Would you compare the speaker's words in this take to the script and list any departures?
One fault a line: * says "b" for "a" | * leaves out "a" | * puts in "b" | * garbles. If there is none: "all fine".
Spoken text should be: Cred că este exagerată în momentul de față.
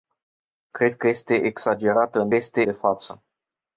* says "este" for "momentul"